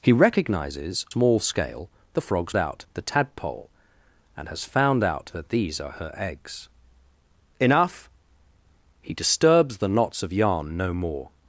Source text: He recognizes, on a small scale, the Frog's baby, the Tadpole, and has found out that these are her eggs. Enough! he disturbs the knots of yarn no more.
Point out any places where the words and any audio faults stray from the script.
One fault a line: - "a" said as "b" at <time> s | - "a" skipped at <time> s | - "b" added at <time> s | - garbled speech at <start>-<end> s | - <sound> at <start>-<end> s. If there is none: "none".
- "on a" skipped at 1.1 s
- "baby" said as "out" at 2.6 s